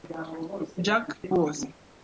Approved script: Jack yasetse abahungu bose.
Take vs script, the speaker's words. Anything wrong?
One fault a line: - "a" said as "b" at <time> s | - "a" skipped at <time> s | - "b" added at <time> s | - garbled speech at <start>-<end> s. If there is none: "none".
- "yasetse abahungu" skipped at 1.1 s